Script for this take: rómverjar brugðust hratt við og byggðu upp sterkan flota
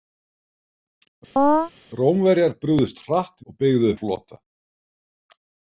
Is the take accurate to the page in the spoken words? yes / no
no